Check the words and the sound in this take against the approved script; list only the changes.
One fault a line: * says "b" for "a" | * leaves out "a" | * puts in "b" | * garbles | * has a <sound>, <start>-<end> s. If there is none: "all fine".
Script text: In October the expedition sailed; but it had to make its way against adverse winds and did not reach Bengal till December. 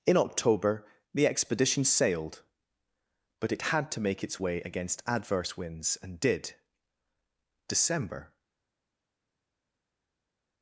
* leaves out "not reach Bengal till"